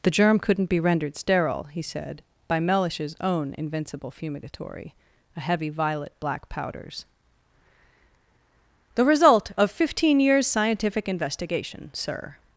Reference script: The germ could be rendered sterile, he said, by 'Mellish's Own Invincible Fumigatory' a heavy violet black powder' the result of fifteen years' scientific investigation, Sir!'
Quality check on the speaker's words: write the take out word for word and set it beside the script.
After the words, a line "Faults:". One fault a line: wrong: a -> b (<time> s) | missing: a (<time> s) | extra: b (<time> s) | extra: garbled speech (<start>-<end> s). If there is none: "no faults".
The germ couldn't be rendered sterile, he said, by 'Mellish's Own Invincible Fumigatory' a heavy violet black powders' the result of fifteen years' scientific investigation, Sir!'
Faults:
wrong: could -> couldn't (0.4 s)
wrong: powder -> powders (6.5 s)